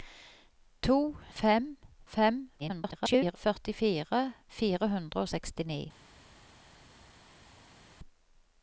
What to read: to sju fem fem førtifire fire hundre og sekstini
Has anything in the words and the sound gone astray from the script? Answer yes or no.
yes